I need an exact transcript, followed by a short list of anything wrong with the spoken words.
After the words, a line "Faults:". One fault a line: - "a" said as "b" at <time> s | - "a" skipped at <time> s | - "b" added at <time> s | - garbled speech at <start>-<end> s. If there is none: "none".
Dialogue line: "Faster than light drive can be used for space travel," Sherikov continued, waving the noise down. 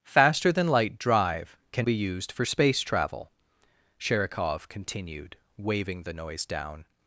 "Faster than light drive can be used for space travel," Sherikov continued, waving the noise down.
Faults:
none